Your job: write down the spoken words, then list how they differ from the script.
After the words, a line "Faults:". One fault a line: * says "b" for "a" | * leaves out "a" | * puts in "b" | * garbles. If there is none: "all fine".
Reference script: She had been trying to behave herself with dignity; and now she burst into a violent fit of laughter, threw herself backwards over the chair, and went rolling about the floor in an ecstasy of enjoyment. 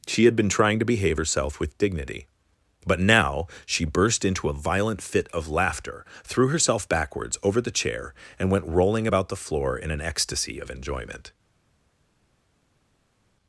She had been trying to behave herself with dignity; but now she burst into a violent fit of laughter, threw herself backwards over the chair, and went rolling about the floor in an ecstasy of enjoyment.
Faults:
* says "but" for "and"